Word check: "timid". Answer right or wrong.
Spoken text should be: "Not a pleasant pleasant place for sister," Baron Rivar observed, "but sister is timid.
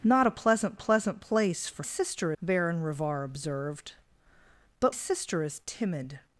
right